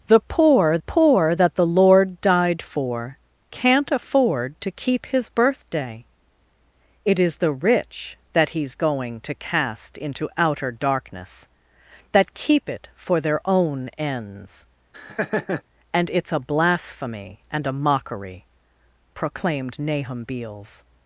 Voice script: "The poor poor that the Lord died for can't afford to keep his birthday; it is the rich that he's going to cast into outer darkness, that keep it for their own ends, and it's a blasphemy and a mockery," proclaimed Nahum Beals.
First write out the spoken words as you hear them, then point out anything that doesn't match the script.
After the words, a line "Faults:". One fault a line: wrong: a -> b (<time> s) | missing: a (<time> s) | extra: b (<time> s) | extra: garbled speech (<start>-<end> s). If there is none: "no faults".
"The poor poor that the Lord died for can't afford to keep his birthday; it is the rich that he's going to cast into outer darkness, that keep it for their own ends, and it's a blasphemy and a mockery," proclaimed Nahum Beals.
Faults:
no faults